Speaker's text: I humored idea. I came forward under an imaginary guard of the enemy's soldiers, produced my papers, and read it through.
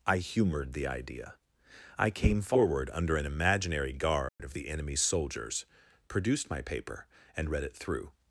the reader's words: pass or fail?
fail